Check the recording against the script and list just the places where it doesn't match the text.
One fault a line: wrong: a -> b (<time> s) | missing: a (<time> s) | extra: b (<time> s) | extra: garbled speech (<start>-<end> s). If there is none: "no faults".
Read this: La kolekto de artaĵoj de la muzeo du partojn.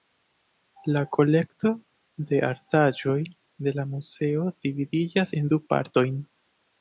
extra: dividiĝas en (4.7 s)